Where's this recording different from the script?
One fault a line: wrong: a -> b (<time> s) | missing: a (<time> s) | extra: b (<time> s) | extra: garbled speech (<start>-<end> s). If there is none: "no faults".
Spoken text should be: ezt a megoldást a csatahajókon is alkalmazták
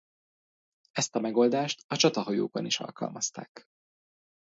no faults